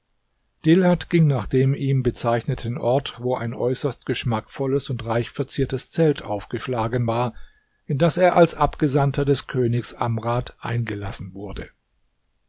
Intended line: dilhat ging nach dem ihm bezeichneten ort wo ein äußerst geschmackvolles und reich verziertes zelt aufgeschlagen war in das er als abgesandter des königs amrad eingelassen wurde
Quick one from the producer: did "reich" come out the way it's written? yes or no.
yes